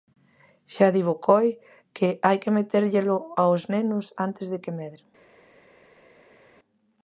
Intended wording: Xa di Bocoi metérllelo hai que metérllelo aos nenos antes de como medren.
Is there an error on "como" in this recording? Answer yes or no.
yes